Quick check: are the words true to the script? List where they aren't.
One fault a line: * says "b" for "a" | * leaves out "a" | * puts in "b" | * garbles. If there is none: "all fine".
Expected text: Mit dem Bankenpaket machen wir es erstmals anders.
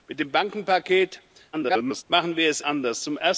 * garbles
* leaves out "erstmals"